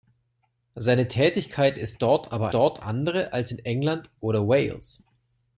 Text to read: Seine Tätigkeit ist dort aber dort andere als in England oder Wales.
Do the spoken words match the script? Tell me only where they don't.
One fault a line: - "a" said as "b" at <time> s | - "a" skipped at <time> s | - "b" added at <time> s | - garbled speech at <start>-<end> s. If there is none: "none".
none